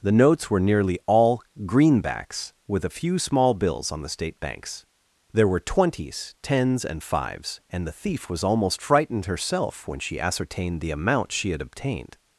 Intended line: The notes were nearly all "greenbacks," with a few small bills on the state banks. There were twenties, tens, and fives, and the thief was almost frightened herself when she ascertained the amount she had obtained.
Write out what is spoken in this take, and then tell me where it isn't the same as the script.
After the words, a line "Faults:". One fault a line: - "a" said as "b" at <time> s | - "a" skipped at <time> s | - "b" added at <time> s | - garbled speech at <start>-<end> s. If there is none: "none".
The notes were nearly all "greenbacks," with a few small bills on the state banks. There were twenties, tens, and fives, and the thief was almost frightened herself when she ascertained the amount she had obtained.
Faults:
none